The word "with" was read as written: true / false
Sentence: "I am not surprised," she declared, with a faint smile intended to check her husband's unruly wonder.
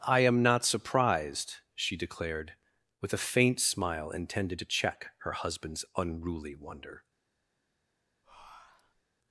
true